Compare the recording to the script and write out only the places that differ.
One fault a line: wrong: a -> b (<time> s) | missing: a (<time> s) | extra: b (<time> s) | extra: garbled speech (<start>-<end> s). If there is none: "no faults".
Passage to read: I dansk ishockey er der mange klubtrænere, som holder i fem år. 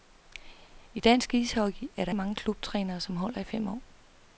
no faults